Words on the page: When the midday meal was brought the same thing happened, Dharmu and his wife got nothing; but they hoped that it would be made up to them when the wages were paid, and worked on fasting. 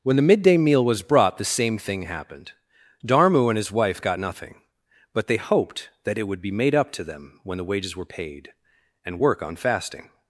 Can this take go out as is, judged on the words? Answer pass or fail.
fail